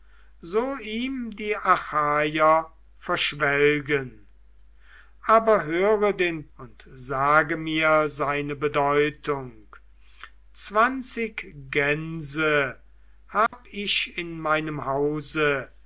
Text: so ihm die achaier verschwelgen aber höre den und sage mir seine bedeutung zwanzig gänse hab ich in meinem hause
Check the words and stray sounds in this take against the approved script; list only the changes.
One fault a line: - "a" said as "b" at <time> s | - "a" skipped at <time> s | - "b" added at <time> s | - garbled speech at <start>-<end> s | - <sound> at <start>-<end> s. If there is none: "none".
- dropout at 13.5-13.5 s